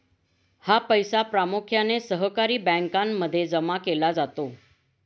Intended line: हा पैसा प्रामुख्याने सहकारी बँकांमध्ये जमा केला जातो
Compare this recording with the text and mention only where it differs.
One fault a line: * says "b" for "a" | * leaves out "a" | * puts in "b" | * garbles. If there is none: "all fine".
all fine